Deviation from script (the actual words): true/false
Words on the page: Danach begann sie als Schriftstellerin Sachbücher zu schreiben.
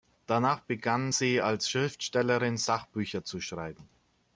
false